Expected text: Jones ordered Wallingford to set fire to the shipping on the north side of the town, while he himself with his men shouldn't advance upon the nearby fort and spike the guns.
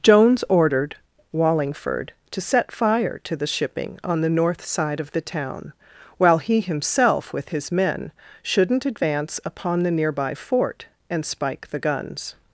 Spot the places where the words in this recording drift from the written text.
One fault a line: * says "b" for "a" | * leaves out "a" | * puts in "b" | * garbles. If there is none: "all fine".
all fine